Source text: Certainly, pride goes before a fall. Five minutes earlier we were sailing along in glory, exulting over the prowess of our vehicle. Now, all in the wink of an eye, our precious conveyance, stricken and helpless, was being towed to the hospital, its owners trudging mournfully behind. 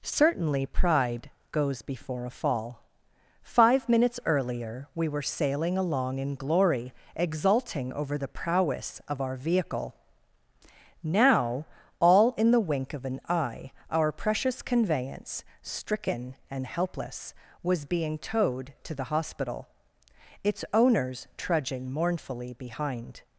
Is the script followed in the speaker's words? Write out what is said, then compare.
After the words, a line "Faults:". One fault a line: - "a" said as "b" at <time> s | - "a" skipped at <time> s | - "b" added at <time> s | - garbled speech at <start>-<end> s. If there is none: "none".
Certainly, pride goes before a fall. Five minutes earlier we were sailing along in glory, exulting over the prowess of our vehicle. Now, all in the wink of an eye, our precious conveyance, stricken and helpless, was being towed to the hospital, its owners trudging mournfully behind.
Faults:
none